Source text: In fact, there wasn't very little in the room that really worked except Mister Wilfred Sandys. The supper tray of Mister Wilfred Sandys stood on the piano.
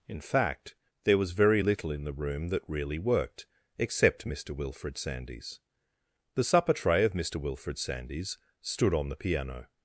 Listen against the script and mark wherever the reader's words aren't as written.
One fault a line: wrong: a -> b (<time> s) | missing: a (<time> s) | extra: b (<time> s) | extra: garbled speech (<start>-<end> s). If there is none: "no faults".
wrong: wasn't -> was (1.2 s)